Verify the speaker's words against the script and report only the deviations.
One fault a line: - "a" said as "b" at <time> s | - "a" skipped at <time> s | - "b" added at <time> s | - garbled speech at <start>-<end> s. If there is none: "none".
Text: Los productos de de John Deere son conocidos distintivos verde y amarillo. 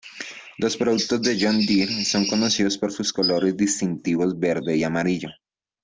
- "de" skipped at 1.4 s
- "por sus colores" added at 2.8 s